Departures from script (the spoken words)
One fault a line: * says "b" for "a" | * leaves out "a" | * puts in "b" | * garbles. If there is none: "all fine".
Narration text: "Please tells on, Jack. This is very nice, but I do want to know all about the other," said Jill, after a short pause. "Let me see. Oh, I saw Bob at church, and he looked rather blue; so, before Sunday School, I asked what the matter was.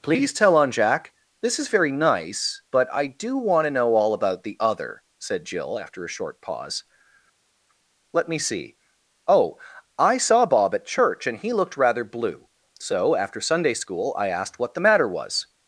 * says "tell" for "tells"
* says "after" for "before"